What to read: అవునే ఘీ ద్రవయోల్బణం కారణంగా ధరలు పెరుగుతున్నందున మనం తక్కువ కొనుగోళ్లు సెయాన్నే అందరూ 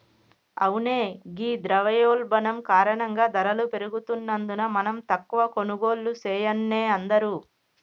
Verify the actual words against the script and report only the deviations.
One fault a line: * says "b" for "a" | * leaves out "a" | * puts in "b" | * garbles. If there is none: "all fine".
all fine